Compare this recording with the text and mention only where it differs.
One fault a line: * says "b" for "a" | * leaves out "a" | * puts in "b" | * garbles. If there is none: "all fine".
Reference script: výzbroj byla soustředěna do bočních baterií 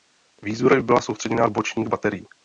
all fine